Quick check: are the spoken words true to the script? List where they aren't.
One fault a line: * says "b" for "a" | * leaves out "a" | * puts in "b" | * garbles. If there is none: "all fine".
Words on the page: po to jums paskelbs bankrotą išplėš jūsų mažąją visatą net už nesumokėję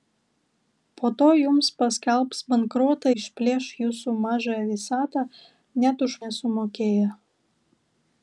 all fine